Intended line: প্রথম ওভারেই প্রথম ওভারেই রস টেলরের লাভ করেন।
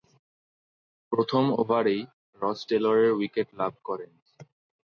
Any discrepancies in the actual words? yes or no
yes